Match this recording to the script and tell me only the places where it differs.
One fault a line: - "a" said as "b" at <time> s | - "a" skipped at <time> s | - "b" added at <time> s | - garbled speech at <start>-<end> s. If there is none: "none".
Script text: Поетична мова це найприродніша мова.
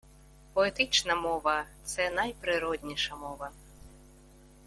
none